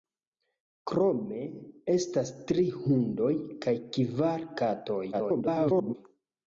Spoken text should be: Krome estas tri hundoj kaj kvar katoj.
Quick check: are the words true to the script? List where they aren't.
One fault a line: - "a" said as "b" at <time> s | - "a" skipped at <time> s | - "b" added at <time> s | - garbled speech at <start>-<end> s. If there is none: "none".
- garbled speech at 5.1-6.0 s